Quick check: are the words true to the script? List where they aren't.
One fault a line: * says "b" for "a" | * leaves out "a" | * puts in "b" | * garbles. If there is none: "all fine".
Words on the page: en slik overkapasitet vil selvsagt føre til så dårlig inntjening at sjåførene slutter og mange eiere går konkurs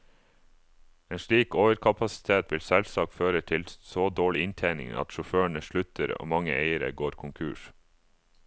all fine